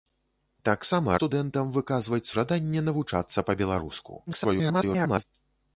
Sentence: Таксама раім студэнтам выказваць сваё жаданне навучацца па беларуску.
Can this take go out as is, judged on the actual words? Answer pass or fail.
fail